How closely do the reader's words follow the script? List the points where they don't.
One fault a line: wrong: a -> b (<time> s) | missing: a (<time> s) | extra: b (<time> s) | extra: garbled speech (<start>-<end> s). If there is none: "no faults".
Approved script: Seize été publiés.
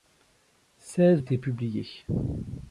no faults